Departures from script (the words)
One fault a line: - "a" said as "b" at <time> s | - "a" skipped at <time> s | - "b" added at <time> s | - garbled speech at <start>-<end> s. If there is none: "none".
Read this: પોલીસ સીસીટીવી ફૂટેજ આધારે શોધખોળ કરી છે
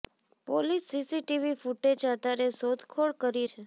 none